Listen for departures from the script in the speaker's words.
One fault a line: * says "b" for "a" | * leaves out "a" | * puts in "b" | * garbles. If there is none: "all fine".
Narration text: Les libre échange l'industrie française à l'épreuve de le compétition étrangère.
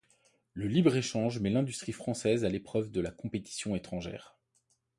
* says "Le" for "Les"
* puts in "met"
* says "la" for "le"